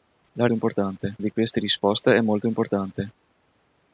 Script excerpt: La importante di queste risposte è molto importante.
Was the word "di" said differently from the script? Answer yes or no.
no